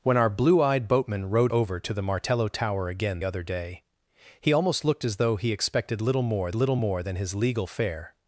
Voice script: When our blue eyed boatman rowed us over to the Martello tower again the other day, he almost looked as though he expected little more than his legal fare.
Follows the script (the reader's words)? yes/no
no